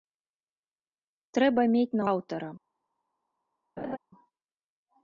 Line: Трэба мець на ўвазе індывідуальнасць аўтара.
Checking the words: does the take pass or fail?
fail